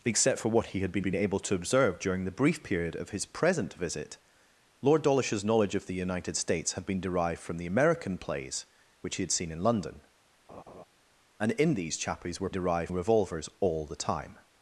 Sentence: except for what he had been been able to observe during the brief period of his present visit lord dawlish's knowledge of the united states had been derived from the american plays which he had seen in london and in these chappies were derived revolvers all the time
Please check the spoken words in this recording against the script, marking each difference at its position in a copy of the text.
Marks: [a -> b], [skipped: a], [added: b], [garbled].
except for what he had been been able to observe during the brief period of his present visit lord dawlish's knowledge of the united states had been derived from the american plays which he had seen in london and in these chappies were derived revolvers all the time